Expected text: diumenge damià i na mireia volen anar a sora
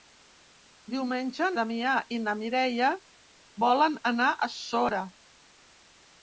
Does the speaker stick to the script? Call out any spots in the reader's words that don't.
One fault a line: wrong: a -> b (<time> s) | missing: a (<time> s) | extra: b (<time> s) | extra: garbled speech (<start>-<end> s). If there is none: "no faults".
no faults